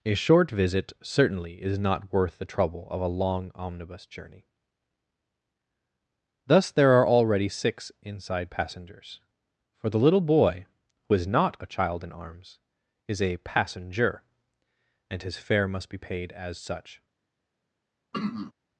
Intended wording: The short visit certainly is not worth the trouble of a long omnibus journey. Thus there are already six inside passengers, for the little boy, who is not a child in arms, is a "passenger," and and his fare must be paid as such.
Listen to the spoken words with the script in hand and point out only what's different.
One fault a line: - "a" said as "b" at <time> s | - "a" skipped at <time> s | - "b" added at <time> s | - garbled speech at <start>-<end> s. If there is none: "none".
- "The" said as "A" at 0.0 s
- "and" skipped at 15.2 s